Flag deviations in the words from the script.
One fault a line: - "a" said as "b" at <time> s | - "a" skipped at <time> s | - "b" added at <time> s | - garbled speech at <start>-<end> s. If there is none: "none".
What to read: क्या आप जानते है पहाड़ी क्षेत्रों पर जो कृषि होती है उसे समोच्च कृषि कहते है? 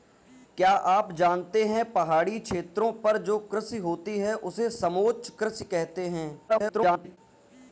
- garbled speech at 6.5-7.2 s